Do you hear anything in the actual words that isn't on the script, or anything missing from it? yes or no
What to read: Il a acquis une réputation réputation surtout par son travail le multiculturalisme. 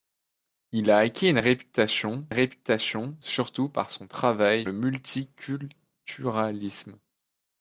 no